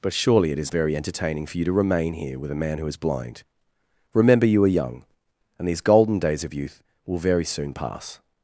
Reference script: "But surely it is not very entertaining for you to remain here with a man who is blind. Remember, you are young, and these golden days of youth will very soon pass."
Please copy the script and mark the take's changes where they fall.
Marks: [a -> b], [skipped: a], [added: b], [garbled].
"But surely it is [skipped: not] very entertaining for you to remain here with a man who is blind. Remember, you are young, and these golden days of youth will very soon pass."